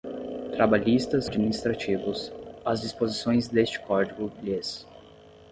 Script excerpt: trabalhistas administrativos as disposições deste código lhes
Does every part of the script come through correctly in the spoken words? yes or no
yes